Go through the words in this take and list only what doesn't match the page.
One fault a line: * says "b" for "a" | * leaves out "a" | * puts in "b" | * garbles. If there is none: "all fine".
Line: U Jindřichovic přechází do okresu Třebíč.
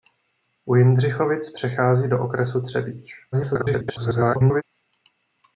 * garbles